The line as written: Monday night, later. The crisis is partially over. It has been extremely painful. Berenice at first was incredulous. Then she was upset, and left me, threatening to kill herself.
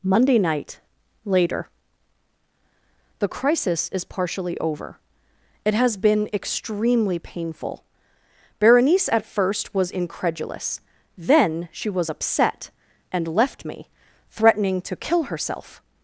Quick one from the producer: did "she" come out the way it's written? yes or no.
yes